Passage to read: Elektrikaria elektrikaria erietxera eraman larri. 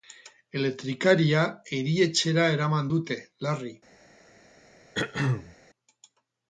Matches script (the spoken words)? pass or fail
fail